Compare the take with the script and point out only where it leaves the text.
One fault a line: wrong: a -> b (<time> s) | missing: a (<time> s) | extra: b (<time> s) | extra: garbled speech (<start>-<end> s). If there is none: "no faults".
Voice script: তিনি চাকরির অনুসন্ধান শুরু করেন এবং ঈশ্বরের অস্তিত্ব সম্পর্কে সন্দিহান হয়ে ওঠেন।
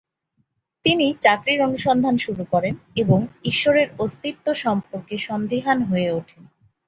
no faults